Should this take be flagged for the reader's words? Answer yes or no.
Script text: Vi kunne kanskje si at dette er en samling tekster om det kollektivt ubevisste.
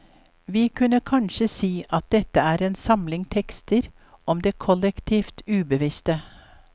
no